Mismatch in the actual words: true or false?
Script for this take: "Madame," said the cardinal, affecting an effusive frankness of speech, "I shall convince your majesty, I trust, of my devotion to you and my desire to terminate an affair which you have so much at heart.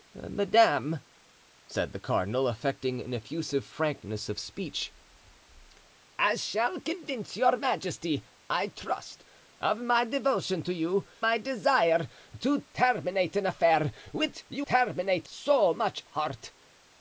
true